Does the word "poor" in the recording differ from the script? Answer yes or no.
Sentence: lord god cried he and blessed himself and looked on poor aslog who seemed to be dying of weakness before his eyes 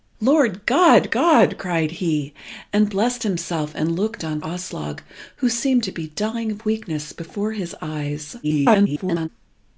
yes